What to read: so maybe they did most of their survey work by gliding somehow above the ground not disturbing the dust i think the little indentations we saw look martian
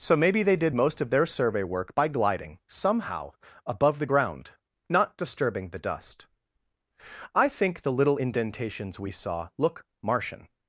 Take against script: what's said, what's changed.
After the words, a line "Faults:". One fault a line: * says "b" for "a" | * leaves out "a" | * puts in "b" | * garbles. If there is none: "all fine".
so maybe they did most of their survey work by gliding somehow above the ground not disturbing the dust i think the little indentations we saw look martian
Faults:
all fine